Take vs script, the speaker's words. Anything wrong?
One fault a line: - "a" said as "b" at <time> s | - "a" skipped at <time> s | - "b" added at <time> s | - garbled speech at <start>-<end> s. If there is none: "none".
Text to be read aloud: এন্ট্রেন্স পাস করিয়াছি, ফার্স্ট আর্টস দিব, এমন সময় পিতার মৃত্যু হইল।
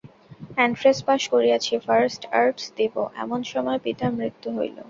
none